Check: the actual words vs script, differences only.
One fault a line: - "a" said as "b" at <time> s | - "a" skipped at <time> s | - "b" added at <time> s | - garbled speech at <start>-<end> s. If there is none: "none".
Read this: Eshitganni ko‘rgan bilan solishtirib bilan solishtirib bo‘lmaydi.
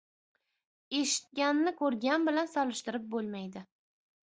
- "bilan solishtirib" skipped at 3.1 s